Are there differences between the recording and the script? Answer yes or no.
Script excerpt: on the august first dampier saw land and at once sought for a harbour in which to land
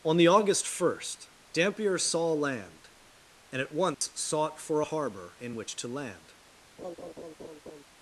no